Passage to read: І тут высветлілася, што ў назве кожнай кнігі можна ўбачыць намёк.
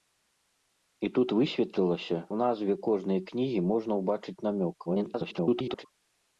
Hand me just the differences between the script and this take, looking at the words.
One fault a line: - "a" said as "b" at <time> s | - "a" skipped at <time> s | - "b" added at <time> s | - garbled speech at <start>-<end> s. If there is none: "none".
- "што" skipped at 2.2 s
- garbled speech at 4.9-5.9 s